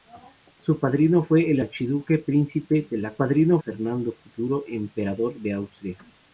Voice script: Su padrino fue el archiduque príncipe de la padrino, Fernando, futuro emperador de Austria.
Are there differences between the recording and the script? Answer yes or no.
no